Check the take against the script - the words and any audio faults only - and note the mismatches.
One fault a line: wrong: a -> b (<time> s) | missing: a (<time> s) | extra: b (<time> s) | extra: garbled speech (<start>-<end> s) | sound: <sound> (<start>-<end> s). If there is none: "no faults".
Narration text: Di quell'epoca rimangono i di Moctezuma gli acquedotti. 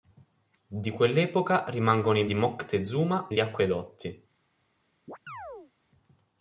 sound: chirp (5.1-5.7 s)